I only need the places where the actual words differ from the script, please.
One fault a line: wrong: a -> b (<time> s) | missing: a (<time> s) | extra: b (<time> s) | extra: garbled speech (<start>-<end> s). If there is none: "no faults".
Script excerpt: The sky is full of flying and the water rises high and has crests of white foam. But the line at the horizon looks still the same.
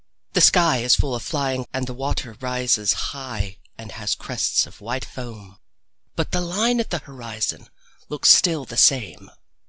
no faults